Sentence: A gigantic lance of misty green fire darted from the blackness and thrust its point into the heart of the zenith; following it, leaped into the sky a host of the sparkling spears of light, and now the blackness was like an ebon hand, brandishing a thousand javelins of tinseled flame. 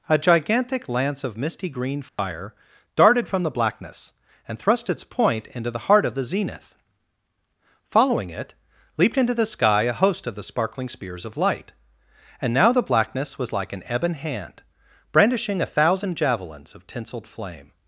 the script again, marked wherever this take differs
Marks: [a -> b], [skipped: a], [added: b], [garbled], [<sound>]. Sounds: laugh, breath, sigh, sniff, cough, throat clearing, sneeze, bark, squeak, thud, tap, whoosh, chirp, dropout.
A gigantic lance of misty green fire [dropout] darted from the blackness and thrust its point into the heart of the zenith; following it, leaped into the sky a host of the sparkling spears of light, and now the blackness was like an ebon hand, brandishing a thousand javelins of tinseled flame.